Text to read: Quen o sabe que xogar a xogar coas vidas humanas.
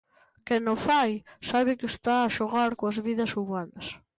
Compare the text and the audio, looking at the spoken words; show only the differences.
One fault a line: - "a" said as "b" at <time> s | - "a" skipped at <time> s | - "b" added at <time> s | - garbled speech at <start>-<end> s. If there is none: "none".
- "fai" added at 0.8 s
- "xogar" said as "está" at 1.9 s